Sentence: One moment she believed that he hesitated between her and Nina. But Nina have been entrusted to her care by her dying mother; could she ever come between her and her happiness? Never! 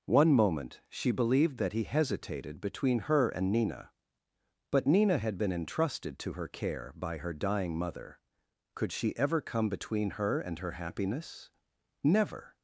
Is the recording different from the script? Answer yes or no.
yes